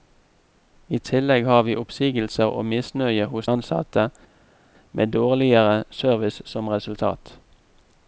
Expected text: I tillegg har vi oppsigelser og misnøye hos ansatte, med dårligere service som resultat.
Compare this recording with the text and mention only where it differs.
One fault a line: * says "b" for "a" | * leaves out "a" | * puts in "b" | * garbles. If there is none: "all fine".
all fine